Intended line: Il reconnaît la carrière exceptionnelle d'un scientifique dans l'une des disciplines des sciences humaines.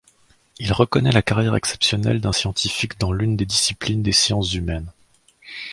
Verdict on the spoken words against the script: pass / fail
pass